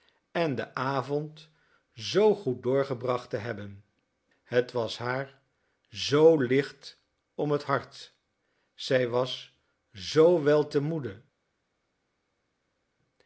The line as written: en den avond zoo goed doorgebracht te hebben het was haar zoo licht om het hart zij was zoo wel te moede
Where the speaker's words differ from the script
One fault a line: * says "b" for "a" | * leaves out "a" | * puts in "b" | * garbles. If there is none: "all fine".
all fine